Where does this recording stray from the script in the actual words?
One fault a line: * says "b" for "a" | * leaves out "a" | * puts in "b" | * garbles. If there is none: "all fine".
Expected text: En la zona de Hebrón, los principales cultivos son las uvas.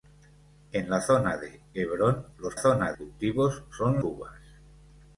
* says "zona" for "principales"
* leaves out "las"